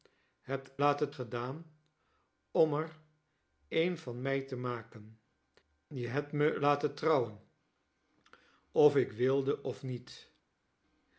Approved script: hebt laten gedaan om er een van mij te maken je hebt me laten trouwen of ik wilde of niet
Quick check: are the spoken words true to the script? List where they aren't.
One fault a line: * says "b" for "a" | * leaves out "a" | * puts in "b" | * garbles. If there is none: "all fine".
all fine